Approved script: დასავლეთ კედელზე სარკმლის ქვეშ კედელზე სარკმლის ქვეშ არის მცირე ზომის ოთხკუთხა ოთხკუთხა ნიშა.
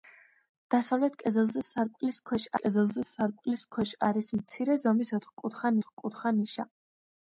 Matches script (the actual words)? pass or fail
pass